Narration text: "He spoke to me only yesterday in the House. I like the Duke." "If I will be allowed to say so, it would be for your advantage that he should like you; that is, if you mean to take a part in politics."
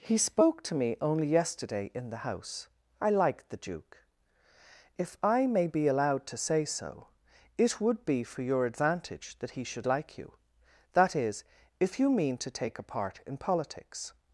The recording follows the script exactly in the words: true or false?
false